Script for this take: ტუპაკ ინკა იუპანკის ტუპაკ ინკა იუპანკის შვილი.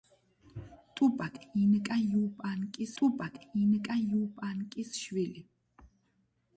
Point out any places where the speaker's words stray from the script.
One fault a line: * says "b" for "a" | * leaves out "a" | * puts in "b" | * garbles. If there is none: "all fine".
all fine